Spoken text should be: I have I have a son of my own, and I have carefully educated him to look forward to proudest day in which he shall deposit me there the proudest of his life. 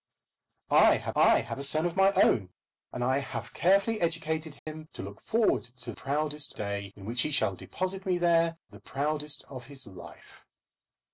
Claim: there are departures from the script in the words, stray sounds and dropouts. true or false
true